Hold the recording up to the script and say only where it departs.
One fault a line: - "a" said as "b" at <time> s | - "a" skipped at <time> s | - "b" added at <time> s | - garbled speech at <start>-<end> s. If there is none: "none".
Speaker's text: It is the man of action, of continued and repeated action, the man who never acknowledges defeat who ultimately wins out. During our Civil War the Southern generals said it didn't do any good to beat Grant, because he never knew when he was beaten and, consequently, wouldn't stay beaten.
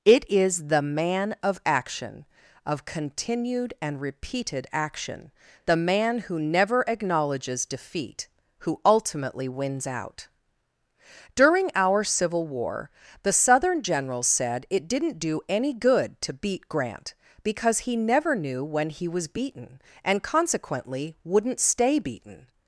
none